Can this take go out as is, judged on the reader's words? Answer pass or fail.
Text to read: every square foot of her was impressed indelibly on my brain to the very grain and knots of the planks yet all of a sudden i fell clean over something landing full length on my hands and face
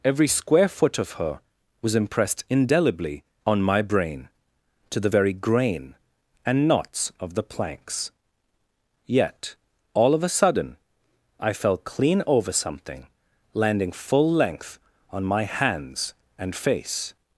pass